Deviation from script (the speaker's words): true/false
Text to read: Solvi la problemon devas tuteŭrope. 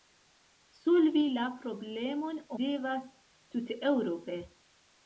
false